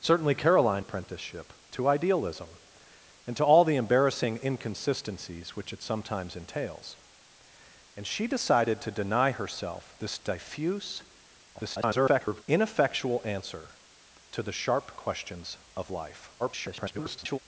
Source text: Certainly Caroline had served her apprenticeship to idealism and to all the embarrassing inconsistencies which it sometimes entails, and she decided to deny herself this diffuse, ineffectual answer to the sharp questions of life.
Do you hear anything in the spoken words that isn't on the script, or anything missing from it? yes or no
yes